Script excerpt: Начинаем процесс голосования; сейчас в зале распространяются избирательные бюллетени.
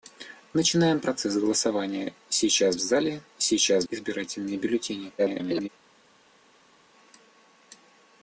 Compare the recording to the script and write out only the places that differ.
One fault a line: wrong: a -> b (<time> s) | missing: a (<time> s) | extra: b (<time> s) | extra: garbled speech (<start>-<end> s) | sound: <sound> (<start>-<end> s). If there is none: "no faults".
wrong: распространяются -> сейчас (3.4 s)
extra: garbled speech (5.2-5.7 s)